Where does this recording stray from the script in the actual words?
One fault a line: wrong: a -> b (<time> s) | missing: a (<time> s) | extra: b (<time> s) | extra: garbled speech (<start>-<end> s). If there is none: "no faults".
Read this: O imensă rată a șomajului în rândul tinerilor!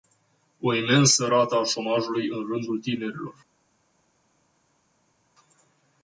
no faults